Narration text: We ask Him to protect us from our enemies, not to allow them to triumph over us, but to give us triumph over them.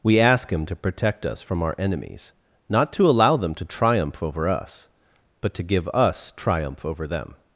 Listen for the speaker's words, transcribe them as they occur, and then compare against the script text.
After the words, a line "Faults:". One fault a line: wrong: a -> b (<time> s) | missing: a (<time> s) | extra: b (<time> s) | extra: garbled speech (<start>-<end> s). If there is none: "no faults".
We ask Him to protect us from our enemies, not to allow them to triumph over us, but to give us triumph over them.
Faults:
no faults